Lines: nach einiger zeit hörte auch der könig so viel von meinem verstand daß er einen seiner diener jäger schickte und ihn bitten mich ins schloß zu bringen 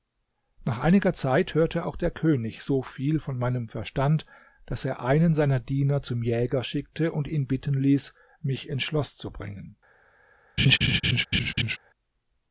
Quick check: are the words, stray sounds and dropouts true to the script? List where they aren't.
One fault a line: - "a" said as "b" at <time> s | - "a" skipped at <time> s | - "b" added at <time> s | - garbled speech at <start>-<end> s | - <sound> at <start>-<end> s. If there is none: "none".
- "zum" added at 6.0 s
- "ließ" added at 7.7 s
- laugh at 10.6-11.8 s